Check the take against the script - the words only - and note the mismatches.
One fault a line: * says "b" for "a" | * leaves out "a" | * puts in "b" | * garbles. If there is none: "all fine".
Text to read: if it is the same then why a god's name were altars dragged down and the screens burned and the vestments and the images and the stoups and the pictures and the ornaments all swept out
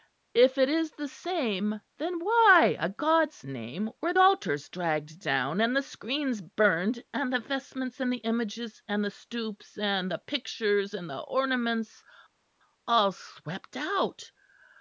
all fine